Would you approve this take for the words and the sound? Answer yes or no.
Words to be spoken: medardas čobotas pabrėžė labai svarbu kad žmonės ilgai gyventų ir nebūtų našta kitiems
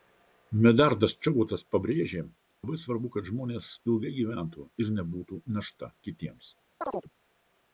no